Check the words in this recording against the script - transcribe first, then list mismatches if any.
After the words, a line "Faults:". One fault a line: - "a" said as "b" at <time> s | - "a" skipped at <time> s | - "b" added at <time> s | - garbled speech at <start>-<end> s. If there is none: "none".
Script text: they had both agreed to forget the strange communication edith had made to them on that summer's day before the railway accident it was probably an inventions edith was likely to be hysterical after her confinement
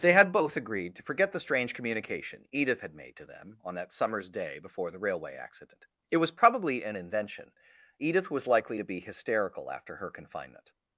they had both agreed to forget the strange communication edith had made to them on that summer's day before the railway accident it was probably an invention edith was likely to be hysterical after her confinement
Faults:
- "inventions" said as "invention" at 7.0 s